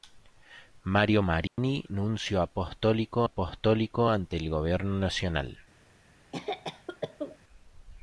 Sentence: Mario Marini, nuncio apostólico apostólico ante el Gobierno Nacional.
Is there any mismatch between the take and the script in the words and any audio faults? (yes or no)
yes